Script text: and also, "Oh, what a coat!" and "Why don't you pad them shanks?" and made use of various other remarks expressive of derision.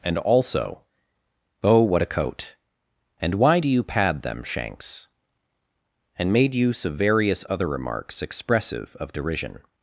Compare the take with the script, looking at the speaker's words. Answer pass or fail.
fail